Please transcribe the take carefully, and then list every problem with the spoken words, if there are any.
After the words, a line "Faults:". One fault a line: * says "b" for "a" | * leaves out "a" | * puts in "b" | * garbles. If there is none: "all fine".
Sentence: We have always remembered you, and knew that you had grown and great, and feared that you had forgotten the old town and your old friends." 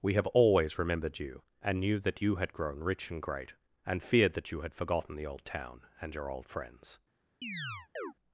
We have always remembered you, and knew that you had grown rich and great, and feared that you had forgotten the old town and your old friends."
Faults:
* puts in "rich"